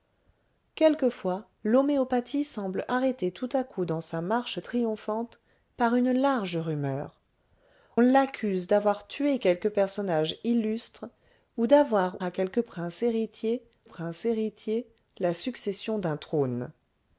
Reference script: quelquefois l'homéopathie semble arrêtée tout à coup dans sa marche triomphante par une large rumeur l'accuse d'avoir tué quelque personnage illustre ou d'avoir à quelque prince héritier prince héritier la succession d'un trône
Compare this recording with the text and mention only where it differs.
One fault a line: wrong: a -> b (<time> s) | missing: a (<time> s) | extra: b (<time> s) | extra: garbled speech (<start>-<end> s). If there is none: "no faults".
no faults